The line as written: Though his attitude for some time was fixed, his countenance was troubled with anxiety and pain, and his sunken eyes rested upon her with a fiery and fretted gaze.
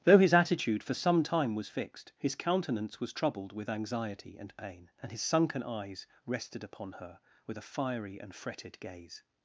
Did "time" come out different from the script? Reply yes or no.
no